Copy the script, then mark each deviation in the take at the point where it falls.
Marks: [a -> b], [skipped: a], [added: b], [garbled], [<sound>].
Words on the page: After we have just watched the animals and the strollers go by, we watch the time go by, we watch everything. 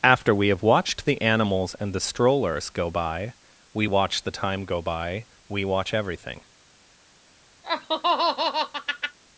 After we have [skipped: just] watched the animals and the strollers go by, we watch the time go by, we watch everything. [laugh]